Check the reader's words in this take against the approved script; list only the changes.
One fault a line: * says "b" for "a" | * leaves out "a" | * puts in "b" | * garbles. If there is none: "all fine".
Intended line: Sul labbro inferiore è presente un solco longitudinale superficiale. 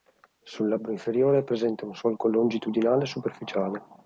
all fine